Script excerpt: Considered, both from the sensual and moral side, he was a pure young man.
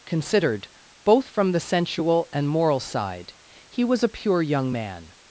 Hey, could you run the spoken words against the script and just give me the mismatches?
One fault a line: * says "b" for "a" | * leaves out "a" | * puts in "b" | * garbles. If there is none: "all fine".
all fine